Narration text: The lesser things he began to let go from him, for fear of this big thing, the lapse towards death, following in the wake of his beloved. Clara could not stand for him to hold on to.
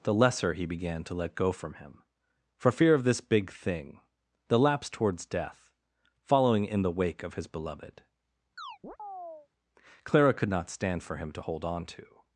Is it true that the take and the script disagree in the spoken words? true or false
true